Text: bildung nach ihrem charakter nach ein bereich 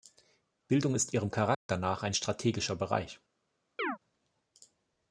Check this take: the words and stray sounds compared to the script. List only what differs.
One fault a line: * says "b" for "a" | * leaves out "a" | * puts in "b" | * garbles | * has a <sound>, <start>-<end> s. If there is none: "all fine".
* says "ist" for "nach"
* has a dropout, 1.5-1.7 s
* puts in "strategischer"
* has a chirp, 3.8-4.0 s